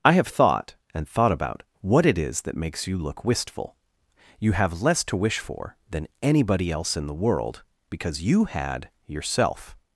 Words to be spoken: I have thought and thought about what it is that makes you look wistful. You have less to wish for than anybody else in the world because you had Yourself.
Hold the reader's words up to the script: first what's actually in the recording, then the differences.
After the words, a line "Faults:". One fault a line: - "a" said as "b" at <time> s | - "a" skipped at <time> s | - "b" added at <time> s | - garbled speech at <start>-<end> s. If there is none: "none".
I have thought and thought about what it is that makes you look wistful. You have less to wish for than anybody else in the world because you had Yourself.
Faults:
none